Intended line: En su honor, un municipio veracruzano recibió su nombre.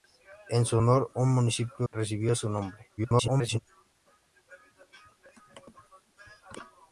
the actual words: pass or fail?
fail